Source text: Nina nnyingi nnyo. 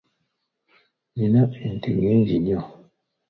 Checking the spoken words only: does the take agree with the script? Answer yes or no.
no